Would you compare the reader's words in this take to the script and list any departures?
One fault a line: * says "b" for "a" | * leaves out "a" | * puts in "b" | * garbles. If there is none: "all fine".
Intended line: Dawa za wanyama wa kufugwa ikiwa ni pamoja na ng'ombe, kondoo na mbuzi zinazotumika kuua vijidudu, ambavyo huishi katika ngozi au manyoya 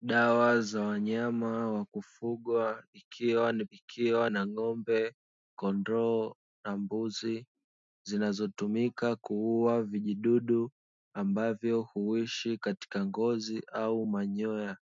* says "ikiwa" for "pamoja"